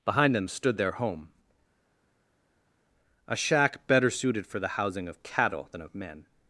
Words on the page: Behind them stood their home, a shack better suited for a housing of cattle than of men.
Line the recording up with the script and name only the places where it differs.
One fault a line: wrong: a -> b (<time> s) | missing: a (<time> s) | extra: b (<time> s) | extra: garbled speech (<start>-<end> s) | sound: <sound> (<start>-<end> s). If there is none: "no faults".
wrong: a -> the (4.6 s)